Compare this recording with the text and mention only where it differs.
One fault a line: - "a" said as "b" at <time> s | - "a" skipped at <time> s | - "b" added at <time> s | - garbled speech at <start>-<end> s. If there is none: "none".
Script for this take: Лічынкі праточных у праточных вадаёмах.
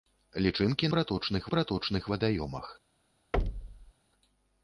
none